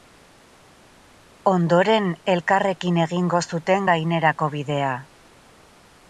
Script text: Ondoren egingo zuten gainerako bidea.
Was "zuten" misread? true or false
false